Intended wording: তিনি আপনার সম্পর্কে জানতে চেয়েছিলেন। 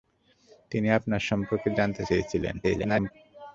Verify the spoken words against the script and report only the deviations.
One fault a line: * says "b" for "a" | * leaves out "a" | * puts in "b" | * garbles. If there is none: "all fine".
* garbles